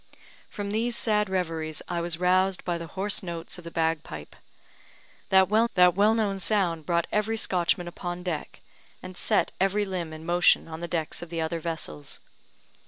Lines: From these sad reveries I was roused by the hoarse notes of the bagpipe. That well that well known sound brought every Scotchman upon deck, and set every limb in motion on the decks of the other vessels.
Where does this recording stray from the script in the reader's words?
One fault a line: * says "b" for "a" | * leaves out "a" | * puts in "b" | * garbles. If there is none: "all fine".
all fine